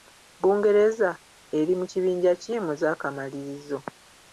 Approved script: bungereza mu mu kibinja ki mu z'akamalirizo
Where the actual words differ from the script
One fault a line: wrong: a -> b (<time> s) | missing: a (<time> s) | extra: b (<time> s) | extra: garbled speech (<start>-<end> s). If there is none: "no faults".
wrong: mu -> eri (1.6 s)